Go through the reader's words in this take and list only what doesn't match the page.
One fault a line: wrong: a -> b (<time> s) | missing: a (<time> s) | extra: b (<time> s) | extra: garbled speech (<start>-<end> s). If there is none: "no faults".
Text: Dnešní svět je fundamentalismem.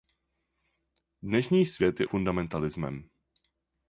no faults